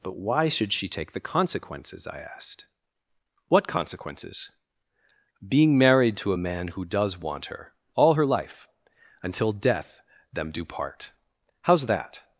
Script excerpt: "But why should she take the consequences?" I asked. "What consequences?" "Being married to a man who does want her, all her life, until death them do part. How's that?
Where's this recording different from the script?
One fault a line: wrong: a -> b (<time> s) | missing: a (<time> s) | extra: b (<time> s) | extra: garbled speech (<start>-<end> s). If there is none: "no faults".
no faults